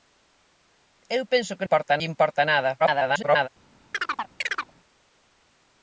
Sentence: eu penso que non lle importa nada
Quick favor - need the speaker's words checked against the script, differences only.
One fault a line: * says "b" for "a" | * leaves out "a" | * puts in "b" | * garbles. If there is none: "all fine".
* says "importa" for "non"
* garbles